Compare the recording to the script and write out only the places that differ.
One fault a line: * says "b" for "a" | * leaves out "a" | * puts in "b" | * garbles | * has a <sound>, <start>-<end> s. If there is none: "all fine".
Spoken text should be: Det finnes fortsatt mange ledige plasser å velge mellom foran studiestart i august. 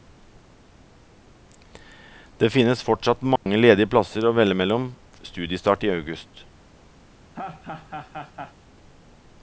* has a dropout, 3.4-3.5 s
* leaves out "foran"
* has a laugh, 7.3-8.5 s